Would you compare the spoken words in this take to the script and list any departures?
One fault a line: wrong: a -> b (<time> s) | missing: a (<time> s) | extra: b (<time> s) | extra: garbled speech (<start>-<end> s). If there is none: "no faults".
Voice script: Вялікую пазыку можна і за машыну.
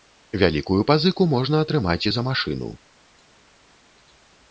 extra: атрымаць (1.6 s)